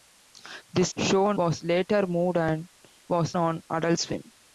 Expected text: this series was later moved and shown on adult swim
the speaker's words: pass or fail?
fail